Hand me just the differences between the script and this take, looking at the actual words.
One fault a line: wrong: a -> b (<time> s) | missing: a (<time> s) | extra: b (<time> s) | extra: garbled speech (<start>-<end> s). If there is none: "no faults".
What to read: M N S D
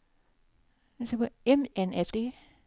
no faults